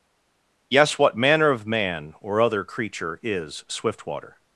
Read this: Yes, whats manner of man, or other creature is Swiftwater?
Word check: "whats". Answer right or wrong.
wrong